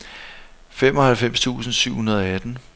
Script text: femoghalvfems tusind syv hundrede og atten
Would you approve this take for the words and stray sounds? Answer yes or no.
yes